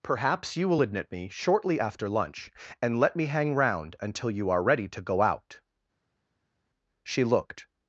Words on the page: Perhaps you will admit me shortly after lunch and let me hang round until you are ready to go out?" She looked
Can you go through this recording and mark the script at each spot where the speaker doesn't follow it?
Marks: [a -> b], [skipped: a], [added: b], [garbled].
Perhaps you will admit me shortly after lunch and let me hang round until you are ready to go out?" She looked